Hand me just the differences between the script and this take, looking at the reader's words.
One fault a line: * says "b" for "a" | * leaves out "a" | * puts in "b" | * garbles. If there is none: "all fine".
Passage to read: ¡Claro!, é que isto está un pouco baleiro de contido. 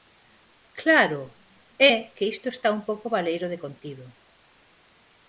all fine